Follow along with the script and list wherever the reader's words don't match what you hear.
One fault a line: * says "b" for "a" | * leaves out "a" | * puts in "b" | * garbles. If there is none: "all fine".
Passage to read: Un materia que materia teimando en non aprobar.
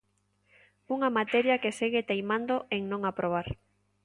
* says "Unha" for "Un"
* says "segue" for "materia"